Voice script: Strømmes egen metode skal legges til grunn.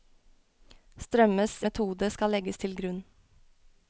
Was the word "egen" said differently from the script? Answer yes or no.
yes